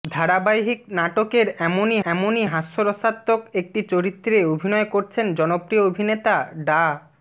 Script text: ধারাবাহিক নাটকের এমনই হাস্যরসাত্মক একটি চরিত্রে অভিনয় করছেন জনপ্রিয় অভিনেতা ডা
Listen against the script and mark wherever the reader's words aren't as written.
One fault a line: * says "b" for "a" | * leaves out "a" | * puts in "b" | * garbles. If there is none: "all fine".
* puts in "এমনই"